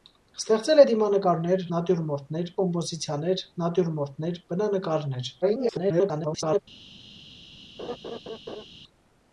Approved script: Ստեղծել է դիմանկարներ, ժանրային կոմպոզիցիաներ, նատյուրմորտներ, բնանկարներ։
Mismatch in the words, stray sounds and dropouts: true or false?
true